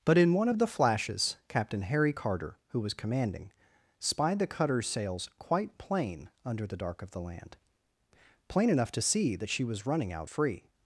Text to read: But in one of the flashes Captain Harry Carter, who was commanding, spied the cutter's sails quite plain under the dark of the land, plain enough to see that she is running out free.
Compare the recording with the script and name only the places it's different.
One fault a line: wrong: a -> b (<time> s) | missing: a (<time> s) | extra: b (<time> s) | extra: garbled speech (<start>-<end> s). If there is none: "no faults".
wrong: is -> was (9.6 s)